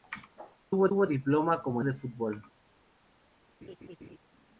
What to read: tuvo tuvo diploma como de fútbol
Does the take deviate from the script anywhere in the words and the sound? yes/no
yes